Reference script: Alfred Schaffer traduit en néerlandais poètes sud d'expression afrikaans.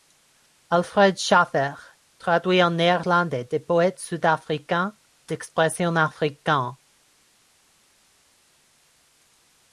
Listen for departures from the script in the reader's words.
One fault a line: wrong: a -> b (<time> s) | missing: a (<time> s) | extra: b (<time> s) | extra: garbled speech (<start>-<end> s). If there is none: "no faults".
extra: des (3.5 s)
extra: africains (4.2 s)